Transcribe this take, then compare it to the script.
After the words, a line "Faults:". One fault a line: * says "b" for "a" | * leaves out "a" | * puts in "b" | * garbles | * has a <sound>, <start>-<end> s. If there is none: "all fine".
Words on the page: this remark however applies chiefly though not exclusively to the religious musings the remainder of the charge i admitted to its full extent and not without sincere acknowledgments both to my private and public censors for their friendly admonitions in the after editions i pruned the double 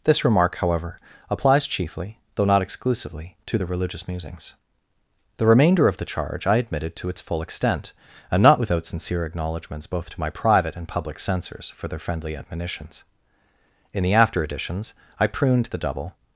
this remark however applies chiefly though not exclusively to the religious musings the remainder of the charge i admitted to its full extent and not without sincere acknowledgments both to my private and public censors for their friendly admonitions in the after editions i pruned the double
Faults:
all fine